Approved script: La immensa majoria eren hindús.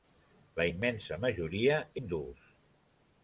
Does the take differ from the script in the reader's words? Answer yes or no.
yes